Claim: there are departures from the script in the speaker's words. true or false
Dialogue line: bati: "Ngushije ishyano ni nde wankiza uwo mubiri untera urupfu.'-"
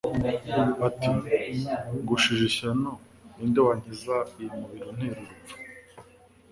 true